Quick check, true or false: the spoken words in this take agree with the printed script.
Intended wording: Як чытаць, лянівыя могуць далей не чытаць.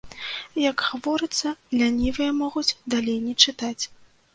false